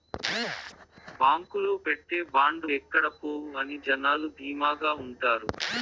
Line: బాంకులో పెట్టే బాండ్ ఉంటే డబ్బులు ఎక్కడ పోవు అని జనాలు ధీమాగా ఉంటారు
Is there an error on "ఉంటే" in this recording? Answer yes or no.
yes